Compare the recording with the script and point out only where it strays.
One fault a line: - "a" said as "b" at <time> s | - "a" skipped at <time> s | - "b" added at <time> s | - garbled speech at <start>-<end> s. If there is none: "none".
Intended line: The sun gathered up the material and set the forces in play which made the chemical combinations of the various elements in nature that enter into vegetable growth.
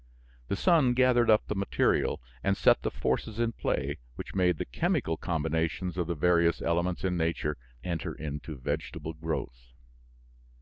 - "that" skipped at 7.6 s